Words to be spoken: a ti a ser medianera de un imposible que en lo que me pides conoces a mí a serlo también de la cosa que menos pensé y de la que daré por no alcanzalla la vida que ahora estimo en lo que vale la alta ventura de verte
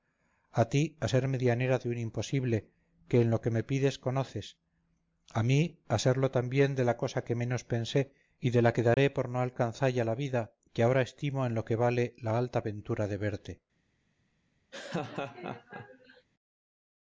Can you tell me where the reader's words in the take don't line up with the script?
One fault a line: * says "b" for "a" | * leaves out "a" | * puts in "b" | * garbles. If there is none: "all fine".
all fine